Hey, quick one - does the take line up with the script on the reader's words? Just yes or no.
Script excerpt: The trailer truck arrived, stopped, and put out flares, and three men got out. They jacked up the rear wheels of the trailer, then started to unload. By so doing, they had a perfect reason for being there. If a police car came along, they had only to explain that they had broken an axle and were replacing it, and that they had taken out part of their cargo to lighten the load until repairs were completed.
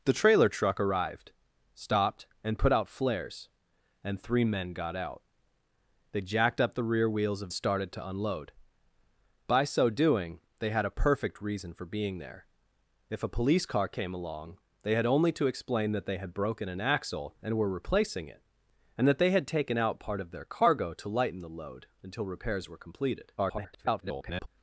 no